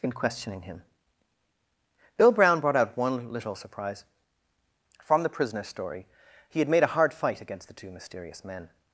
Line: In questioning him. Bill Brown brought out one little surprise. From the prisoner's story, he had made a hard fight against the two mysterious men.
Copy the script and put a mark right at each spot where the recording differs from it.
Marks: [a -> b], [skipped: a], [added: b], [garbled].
In questioning him. Bill Brown brought out one little surprise. From the prisoner's story, he had made a hard fight against the two mysterious men.